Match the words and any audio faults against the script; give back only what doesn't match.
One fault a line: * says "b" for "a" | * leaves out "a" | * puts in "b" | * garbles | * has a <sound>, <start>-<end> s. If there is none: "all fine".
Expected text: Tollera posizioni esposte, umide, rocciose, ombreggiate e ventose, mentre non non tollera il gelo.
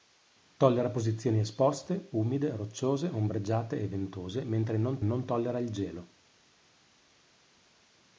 all fine